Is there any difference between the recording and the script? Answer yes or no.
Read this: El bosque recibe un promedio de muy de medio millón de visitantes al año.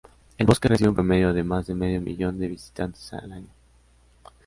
yes